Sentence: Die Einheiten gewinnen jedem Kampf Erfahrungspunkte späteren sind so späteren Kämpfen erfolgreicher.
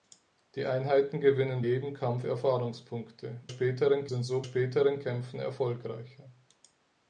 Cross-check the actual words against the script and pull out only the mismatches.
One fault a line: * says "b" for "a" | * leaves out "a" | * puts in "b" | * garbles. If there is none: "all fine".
all fine